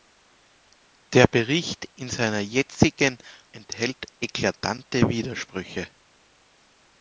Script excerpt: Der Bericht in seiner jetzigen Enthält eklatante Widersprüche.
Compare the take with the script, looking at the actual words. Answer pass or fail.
pass